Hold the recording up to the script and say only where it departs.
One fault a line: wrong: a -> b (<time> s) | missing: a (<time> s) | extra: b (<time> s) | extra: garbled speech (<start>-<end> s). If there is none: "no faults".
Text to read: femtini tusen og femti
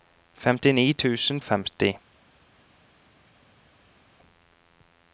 no faults